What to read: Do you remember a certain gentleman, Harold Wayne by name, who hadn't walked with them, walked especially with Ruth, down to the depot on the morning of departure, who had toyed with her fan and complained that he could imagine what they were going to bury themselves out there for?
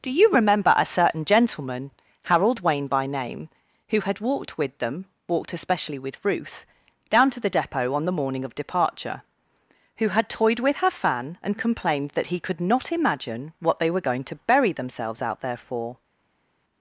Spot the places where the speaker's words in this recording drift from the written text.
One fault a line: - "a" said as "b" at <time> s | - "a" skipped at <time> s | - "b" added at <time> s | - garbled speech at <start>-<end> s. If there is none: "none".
- "hadn't" said as "had" at 4.0 s
- "not" added at 12.6 s